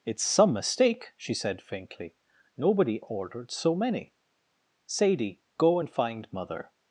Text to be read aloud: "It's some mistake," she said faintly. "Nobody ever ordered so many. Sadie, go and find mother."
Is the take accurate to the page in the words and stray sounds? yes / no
no